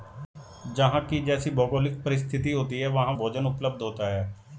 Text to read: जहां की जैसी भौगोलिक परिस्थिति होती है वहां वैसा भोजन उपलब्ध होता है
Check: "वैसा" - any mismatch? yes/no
yes